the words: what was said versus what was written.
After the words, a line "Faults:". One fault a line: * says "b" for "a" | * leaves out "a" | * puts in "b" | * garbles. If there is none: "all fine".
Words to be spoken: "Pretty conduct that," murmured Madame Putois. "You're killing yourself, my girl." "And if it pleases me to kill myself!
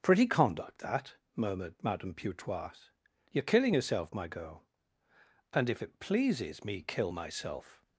"Pretty conduct that," murmured Madame Putois. "You're killing yourself, my girl." "And if it pleases me kill myself!
Faults:
* leaves out "to"